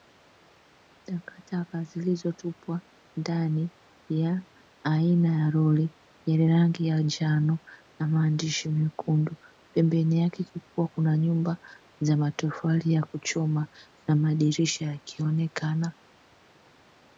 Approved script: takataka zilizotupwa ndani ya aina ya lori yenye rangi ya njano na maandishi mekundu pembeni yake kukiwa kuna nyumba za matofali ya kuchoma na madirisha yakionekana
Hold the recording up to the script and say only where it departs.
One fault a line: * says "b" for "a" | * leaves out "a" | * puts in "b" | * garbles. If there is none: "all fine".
all fine